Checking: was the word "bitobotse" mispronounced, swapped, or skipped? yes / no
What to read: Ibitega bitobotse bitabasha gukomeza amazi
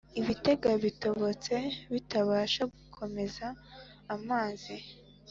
no